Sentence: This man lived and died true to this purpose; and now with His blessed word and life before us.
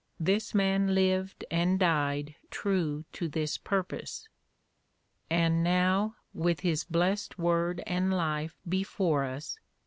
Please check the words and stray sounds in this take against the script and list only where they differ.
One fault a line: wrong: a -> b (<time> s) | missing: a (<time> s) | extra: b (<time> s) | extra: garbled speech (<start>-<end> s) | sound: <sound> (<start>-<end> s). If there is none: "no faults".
no faults